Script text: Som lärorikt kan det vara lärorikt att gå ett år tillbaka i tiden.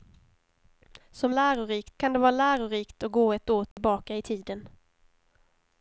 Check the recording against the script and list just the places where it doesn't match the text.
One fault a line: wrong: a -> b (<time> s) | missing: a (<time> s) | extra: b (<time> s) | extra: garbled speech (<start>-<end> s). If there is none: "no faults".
no faults